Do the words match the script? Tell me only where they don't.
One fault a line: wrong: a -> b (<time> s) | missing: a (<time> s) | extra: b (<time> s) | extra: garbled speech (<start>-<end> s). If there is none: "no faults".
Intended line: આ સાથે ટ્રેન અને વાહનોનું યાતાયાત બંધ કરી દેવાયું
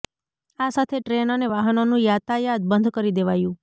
no faults